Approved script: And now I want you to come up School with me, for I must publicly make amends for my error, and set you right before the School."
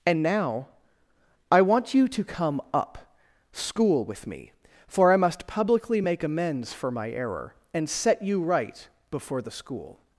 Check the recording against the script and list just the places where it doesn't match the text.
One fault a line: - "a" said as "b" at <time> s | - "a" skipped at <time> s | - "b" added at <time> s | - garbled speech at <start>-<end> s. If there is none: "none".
none